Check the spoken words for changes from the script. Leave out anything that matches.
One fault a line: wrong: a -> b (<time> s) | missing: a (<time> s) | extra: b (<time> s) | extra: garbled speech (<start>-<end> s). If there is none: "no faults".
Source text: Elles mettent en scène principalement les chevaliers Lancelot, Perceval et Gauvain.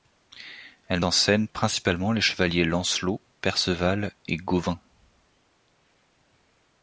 missing: mettent (1.0 s)